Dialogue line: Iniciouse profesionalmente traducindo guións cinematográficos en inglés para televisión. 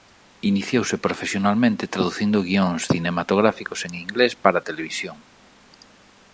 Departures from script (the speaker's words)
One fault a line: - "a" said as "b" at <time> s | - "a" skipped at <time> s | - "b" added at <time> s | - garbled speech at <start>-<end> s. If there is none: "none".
none